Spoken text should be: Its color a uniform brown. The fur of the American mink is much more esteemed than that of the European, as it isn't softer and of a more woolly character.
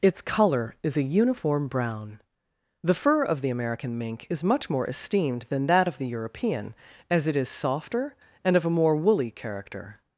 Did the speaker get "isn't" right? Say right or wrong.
wrong